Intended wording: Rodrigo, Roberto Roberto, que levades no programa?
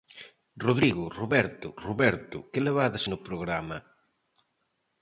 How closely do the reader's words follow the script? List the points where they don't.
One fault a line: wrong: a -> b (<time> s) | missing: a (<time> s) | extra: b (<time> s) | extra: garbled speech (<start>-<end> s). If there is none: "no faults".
no faults